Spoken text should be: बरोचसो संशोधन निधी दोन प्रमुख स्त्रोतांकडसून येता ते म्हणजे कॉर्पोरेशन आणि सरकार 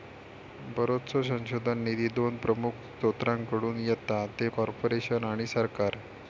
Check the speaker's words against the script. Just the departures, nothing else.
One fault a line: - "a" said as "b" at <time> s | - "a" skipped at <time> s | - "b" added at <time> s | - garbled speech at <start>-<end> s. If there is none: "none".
- "म्हणजे" skipped at 4.5 s